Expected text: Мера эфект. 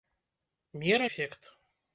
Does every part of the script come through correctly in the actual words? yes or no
yes